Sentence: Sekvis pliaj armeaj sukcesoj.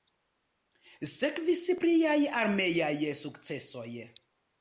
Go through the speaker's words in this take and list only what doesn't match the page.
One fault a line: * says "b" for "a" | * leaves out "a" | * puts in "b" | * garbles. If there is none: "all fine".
all fine